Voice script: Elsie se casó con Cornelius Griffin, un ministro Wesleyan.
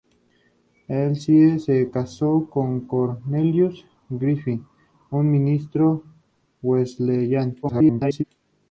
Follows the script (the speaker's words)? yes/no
no